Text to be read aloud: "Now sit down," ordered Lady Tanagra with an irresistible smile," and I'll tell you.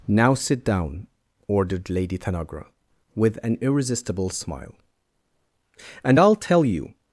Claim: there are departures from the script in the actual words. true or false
false